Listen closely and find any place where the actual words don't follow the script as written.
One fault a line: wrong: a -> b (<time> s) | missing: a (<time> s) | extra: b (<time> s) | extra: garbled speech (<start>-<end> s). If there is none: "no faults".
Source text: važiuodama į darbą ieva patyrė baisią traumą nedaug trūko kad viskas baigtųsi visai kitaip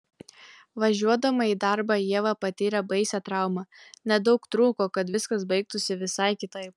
no faults